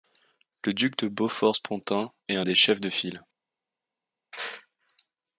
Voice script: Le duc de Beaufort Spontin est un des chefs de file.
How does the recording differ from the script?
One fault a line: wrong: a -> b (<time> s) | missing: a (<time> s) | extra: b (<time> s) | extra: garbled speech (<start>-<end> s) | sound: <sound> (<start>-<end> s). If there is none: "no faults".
no faults